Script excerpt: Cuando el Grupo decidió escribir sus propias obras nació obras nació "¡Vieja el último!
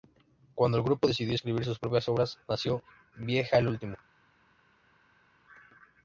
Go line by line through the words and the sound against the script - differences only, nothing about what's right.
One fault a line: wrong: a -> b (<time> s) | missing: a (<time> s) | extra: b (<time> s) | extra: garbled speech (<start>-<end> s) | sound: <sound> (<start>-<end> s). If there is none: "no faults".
missing: obras nació (2.8 s)